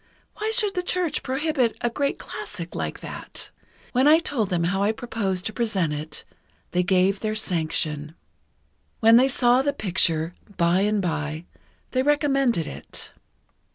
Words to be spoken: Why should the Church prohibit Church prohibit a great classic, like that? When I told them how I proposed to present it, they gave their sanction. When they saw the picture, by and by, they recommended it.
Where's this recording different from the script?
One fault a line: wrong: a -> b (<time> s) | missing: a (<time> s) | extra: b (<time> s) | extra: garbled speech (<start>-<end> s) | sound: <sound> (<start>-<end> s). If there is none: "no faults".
missing: Church prohibit (1.8 s)